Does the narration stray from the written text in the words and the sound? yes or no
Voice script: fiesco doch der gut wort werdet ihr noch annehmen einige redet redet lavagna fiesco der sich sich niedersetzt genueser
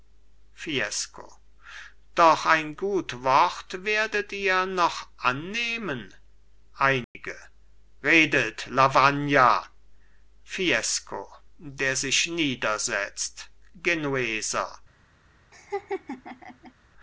yes